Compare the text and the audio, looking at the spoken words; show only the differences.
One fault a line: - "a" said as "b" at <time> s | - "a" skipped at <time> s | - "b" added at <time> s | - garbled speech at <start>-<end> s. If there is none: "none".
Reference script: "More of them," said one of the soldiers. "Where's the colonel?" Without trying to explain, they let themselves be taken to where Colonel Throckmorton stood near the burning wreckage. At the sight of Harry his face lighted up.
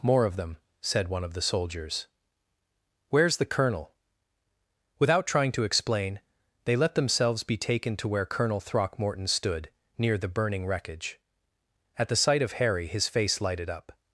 none